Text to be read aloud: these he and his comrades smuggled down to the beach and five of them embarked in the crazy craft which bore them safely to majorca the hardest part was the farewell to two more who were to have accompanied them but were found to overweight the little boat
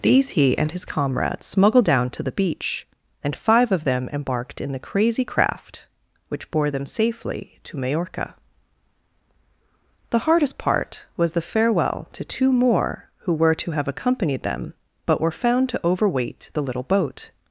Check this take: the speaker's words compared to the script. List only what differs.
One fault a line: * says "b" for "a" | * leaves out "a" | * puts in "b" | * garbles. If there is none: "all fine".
all fine